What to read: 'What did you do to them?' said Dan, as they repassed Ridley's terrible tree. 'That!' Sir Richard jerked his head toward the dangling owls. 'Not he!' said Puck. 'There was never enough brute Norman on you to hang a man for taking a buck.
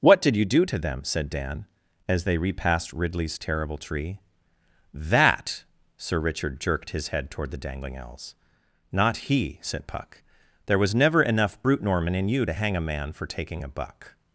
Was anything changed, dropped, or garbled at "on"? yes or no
yes